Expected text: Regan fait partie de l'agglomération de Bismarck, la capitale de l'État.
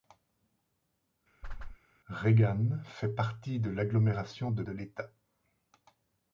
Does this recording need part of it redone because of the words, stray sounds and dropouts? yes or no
yes